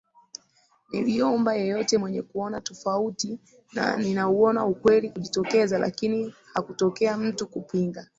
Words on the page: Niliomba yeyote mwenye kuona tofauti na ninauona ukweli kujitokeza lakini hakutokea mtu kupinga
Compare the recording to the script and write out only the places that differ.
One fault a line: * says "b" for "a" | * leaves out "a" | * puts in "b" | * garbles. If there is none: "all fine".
all fine